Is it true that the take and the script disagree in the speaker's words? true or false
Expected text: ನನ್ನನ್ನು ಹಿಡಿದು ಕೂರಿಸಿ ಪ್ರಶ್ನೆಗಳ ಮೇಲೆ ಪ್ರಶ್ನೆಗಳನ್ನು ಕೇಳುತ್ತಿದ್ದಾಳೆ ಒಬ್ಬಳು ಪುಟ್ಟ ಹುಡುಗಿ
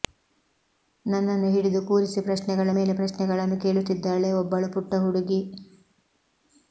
false